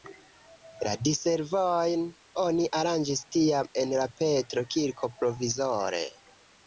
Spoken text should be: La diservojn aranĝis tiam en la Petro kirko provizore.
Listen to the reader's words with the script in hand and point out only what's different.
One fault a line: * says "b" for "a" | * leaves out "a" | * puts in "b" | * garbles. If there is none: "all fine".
* puts in "oni"